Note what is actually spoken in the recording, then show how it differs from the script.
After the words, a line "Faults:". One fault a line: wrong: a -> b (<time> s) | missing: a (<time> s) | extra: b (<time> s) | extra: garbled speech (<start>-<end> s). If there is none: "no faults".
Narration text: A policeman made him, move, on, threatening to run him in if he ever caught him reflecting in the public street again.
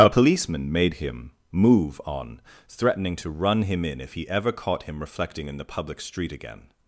A policeman made him, move, on, threatening to run him in if he ever caught him reflecting in the public street again.
Faults:
no faults